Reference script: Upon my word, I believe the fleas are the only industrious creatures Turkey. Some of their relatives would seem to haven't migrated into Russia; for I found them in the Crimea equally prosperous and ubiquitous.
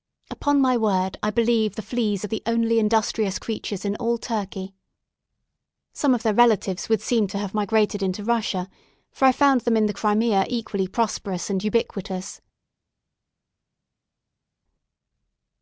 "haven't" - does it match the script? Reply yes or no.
no